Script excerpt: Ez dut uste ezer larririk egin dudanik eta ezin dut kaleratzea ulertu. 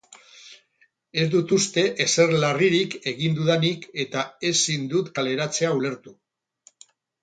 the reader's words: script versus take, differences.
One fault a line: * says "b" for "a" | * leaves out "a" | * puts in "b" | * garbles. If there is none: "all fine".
all fine